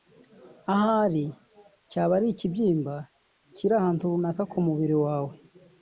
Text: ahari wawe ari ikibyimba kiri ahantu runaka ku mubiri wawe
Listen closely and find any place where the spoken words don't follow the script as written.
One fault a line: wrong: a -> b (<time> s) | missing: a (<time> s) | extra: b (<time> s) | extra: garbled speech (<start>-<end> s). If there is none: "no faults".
wrong: wawe -> cyaba (1.9 s)